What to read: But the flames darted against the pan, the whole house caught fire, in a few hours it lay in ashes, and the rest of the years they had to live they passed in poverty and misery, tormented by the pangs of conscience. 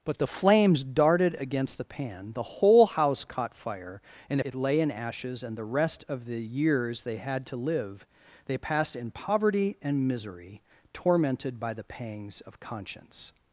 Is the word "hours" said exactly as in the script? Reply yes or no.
no